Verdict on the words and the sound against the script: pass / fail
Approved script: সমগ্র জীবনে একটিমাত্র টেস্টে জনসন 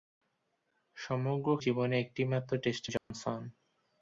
fail